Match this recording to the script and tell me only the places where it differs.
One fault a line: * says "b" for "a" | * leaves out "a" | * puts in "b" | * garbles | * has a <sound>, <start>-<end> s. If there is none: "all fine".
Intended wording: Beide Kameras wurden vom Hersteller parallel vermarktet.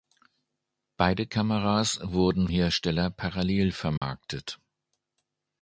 * leaves out "vom"
* has a dropout, 4.0-4.0 s